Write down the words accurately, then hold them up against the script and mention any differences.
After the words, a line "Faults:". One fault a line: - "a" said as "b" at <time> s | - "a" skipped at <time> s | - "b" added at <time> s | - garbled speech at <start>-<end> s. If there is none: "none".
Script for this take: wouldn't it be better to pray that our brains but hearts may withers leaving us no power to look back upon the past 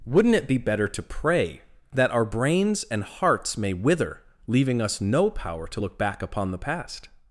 wouldn't it be better to pray that our brains and hearts may wither leaving us no power to look back upon the past
Faults:
- "but" said as "and" at 2.9 s
- "withers" said as "wither" at 3.7 s